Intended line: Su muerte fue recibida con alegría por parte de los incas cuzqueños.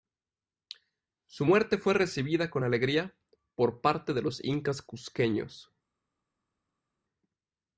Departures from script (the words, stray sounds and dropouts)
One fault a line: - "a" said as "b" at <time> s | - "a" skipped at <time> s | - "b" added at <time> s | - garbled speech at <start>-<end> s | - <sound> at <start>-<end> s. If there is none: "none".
none